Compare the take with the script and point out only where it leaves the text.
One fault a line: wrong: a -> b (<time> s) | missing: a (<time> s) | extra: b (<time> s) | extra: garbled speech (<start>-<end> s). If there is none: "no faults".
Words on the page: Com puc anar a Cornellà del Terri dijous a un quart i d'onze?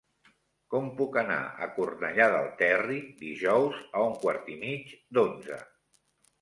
extra: mig (4.7 s)